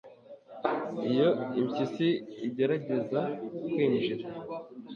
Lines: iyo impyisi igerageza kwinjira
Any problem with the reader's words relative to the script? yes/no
no